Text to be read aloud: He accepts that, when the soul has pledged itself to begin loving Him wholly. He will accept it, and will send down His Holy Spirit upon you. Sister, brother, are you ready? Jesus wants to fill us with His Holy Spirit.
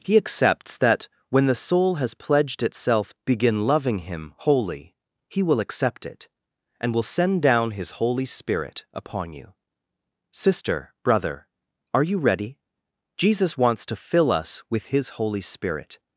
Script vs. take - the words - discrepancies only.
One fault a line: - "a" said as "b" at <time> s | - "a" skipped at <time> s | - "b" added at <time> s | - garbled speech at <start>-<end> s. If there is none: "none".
- "to" skipped at 3.1 s